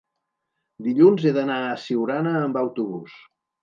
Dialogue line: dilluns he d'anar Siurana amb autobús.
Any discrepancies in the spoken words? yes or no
yes